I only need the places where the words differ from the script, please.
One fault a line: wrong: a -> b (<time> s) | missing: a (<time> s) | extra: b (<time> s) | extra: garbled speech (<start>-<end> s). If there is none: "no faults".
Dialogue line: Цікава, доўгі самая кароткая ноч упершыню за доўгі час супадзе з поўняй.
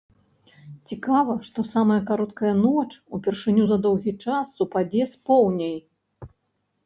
wrong: доўгі -> што (1.5 s)